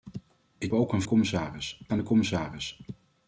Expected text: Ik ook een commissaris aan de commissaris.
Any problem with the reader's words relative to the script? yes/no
no